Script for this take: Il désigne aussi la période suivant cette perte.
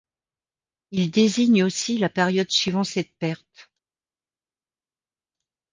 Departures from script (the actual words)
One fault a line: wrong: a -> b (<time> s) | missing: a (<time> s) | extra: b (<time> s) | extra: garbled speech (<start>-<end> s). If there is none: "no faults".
no faults